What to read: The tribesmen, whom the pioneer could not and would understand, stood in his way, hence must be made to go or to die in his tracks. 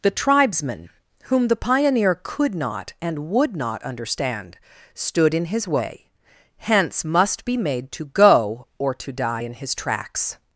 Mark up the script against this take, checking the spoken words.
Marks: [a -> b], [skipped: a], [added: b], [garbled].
The tribesmen, whom the pioneer could not and would [added: not] understand, stood in his way, hence must be made to go or to die in his tracks.